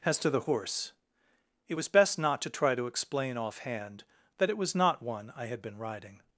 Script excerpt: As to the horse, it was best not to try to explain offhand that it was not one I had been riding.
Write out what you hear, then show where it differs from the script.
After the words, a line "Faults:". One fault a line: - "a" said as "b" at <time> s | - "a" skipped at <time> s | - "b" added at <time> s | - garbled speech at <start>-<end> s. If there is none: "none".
As to the horse, it was best not to try to explain offhand that it was not one I had been riding.
Faults:
none